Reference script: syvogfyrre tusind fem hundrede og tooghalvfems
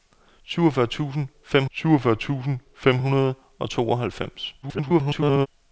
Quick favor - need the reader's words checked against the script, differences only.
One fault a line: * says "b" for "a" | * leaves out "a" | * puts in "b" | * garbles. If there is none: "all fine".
* puts in "syvogfyrre tusind fem"
* garbles